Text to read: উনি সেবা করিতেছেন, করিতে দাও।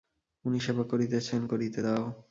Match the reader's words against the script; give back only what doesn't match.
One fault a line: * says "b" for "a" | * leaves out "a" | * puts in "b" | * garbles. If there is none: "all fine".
all fine